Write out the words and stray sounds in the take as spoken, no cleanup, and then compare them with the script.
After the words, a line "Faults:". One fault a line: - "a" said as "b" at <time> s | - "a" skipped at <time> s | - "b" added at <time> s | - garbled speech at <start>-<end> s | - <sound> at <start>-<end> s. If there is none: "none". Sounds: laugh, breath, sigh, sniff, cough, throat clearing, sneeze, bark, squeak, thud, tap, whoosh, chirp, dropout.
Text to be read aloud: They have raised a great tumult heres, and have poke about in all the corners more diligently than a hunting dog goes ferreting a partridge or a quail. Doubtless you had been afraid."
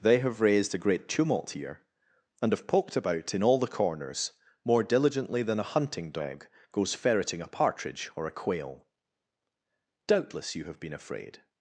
They have raised a great tumult here, and have poked about in all the corners more diligently than a hunting dog goes ferreting a partridge or a quail. Doubtless you have been afraid."
Faults:
- "heres" said as "here" at 1.5 s
- "poke" said as "poked" at 2.7 s
- "had" said as "have" at 10.6 s